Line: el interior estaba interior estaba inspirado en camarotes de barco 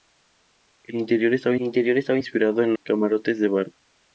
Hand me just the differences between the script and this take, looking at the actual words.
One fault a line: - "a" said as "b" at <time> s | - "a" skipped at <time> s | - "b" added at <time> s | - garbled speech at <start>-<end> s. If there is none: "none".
none